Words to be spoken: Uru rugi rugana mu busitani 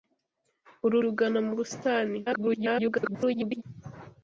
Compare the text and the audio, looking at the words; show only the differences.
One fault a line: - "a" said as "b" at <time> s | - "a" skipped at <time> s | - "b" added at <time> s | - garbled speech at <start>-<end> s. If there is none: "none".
- "rugi" skipped at 1.0 s
- garbled speech at 2.3-3.6 s